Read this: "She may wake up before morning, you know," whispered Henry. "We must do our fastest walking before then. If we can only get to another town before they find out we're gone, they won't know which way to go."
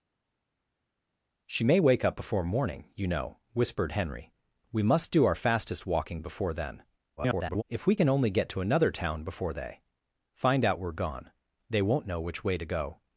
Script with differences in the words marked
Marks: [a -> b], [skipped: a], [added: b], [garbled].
"She may wake up before morning, you know," whispered Henry. "We must do our fastest walking before then. [garbled] If we can only get to another town before they find out we're gone, they won't know which way to go."